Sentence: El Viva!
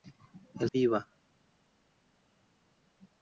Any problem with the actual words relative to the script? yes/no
no